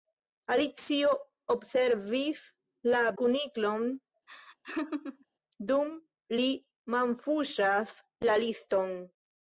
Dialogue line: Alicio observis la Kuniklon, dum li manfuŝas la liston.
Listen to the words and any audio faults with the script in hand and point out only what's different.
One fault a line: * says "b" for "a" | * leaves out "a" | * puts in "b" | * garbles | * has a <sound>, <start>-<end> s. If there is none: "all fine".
* has a laugh, 4.3-5.3 s